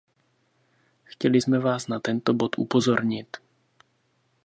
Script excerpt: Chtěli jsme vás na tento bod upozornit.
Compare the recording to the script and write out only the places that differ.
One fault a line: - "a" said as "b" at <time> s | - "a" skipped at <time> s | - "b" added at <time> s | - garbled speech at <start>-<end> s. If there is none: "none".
none